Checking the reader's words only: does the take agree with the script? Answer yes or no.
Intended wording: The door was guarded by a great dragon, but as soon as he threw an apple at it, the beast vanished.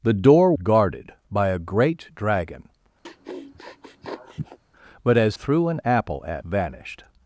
no